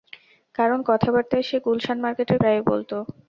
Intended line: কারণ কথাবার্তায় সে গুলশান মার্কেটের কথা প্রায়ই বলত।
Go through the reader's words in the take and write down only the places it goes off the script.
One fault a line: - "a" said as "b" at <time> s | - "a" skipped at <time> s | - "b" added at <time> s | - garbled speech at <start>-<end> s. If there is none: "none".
- "কথা" skipped at 2.4 s